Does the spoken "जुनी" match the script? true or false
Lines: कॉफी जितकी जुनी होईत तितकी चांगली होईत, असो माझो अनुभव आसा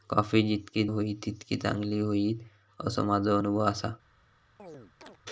false